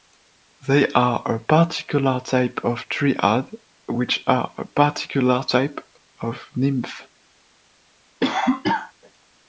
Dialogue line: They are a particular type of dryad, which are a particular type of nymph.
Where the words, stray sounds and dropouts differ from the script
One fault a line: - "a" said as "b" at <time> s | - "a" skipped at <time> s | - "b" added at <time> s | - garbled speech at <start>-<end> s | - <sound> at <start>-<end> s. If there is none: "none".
- cough at 8.2-8.9 s